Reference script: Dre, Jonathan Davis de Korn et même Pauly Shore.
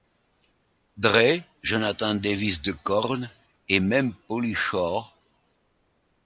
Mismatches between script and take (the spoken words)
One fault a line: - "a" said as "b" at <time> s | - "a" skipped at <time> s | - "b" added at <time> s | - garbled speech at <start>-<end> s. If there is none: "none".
none